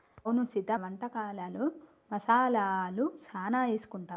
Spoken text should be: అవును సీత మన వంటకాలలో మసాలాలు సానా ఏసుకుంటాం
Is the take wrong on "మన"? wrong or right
wrong